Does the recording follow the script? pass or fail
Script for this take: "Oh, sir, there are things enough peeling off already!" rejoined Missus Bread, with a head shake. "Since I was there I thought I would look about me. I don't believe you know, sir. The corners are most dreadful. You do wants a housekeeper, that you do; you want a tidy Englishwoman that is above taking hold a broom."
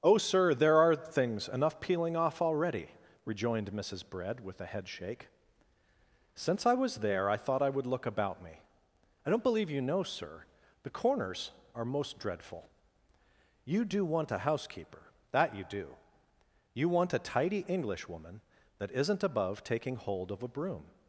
fail